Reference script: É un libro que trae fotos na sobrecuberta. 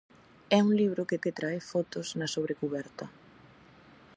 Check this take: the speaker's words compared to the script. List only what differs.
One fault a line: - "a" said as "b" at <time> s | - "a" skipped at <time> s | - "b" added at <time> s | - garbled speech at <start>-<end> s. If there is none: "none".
- "que" added at 1.2 s